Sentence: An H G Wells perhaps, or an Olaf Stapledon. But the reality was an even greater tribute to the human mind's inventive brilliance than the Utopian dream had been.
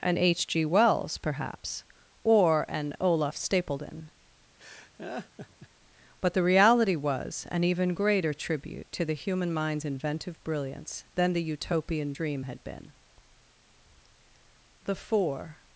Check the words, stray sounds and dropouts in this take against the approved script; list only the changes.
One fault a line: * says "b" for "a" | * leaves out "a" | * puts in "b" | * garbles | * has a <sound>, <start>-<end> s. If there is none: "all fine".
* has a laugh, 4.6-5.7 s
* puts in "The four"